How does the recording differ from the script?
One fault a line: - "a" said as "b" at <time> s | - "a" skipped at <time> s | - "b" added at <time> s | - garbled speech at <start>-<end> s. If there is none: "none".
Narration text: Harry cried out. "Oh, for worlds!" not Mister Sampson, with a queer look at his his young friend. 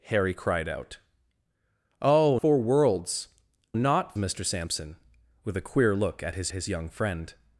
none